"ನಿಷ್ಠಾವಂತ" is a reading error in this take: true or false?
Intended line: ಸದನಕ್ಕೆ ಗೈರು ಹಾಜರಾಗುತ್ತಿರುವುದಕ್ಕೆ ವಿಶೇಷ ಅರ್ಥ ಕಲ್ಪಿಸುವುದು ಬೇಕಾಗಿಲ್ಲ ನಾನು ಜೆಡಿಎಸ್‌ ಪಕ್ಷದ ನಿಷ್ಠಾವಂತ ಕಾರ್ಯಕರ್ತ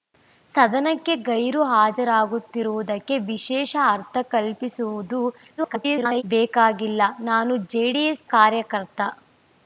true